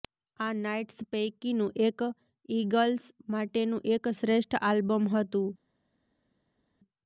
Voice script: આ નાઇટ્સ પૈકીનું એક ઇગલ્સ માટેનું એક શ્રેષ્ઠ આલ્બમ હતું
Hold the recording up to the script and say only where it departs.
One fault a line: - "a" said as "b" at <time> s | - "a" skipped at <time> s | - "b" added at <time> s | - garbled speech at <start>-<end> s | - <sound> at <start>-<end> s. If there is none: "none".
none